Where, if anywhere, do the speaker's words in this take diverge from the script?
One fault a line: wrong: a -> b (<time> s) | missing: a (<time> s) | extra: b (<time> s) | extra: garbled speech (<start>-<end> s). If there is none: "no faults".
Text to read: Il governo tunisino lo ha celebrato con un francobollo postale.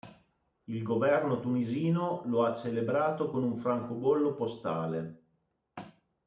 no faults